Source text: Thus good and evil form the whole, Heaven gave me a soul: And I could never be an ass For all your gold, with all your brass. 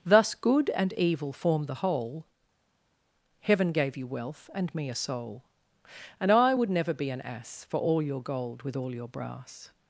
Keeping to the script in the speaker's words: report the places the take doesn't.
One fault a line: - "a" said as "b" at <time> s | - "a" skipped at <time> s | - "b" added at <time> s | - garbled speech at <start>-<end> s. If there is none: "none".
- "you wealth and" added at 4.0 s
- "could" said as "would" at 6.5 s